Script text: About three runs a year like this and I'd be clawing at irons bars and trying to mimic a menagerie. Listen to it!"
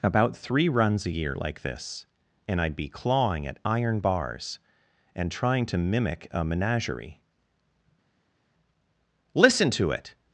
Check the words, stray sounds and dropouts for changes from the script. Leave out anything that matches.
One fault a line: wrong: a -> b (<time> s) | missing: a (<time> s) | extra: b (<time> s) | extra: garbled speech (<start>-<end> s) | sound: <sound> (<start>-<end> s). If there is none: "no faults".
wrong: irons -> iron (3.6 s)